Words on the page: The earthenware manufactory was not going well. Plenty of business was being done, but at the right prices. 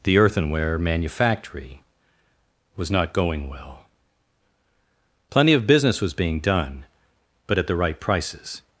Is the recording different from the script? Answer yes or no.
no